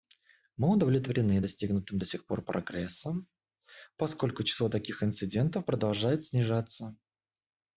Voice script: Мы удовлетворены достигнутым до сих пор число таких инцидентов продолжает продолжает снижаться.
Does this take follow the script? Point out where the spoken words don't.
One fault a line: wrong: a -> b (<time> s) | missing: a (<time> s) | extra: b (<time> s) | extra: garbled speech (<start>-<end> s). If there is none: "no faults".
extra: прогрессом поскольку (2.4 s)
missing: продолжает (6.3 s)